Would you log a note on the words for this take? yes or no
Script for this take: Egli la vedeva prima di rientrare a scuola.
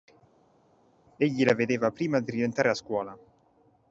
no